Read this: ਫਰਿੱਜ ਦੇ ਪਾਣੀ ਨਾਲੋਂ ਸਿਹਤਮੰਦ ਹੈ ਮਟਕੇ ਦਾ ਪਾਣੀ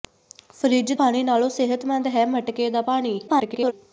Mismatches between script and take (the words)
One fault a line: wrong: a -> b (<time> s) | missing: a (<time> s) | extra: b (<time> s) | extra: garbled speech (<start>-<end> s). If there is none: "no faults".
missing: ਦੇ (0.9 s)
extra: garbled speech (3.3-3.7 s)